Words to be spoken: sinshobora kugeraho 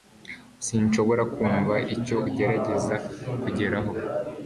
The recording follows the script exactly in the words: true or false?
false